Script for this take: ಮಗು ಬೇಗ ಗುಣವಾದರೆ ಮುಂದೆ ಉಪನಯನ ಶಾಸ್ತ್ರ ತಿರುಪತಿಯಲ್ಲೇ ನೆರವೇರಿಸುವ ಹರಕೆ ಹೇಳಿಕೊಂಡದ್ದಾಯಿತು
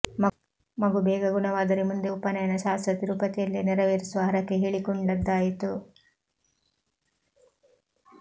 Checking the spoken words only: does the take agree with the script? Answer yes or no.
yes